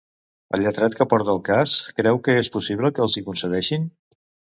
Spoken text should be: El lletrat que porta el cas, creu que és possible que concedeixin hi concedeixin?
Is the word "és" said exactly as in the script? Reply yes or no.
yes